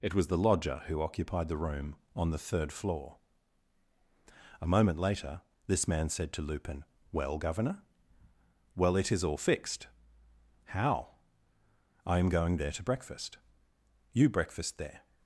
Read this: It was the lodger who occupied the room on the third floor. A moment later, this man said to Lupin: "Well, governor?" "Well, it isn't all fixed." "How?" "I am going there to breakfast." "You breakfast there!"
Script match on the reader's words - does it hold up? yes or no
no